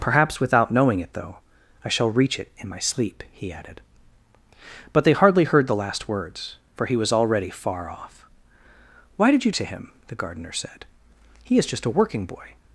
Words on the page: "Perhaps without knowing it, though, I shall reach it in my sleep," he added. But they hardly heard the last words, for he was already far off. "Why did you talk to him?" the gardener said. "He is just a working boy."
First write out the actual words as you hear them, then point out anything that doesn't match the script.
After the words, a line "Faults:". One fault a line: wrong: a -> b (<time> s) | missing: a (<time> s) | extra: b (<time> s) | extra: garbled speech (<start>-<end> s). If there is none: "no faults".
"Perhaps without knowing it, though, I shall reach it in my sleep," he added. But they hardly heard the last words, for he was already far off. "Why did you to him?" the gardener said. "He is just a working boy."
Faults:
missing: talk (9.5 s)